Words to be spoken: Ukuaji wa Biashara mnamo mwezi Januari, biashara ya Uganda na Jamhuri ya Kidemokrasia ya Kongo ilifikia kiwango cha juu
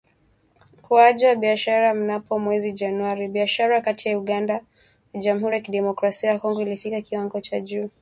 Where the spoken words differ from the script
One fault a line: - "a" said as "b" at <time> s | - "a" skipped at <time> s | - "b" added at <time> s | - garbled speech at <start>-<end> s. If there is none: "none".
- "kati" added at 3.8 s